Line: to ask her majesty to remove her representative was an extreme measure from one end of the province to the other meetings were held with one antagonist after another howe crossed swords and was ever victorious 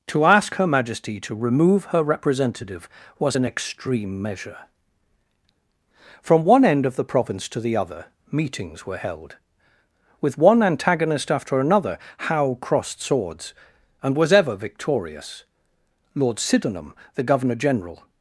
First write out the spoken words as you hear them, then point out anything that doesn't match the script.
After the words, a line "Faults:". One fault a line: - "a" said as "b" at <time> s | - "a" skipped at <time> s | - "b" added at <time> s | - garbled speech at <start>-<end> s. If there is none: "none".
to ask her majesty to remove her representative was an extreme measure from one end of the province to the other meetings were held with one antagonist after another howe crossed swords and was ever victorious lord sydenham the governor general
Faults:
- "lord sydenham the governor general" added at 16.1 s